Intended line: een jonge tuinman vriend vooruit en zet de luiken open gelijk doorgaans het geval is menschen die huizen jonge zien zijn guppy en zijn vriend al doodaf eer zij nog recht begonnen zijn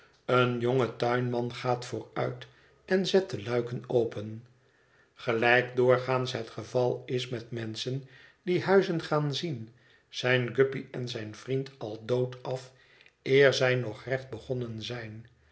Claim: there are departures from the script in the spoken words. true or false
true